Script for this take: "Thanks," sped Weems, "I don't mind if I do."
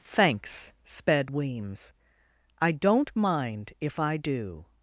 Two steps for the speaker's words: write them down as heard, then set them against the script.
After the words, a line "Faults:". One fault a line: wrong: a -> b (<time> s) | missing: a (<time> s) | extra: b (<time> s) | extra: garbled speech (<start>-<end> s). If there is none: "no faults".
"Thanks," sped Weems, "I don't mind if I do."
Faults:
no faults